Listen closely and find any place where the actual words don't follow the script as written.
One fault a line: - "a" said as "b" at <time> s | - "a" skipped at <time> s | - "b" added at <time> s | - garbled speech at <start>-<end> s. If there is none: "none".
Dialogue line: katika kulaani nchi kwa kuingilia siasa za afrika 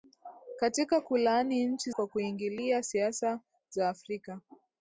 none